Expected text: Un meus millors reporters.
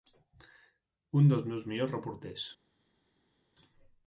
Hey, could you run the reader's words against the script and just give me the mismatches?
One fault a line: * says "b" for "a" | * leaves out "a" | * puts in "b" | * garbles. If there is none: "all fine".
* puts in "dels"